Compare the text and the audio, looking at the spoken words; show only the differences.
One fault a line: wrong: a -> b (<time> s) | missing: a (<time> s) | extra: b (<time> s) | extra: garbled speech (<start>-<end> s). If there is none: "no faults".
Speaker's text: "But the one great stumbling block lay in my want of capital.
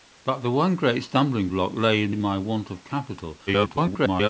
extra: in (2.1 s)
extra: garbled speech (3.5-4.3 s)